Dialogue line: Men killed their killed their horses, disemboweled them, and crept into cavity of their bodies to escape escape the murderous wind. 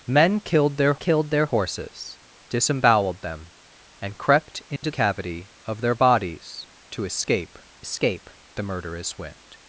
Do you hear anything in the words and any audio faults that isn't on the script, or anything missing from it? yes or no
yes